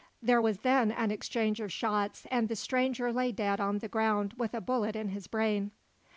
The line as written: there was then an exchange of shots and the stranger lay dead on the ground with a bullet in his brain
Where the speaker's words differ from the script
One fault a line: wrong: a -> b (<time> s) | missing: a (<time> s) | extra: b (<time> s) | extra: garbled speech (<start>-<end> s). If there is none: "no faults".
no faults